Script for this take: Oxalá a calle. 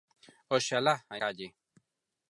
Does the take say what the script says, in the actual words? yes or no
yes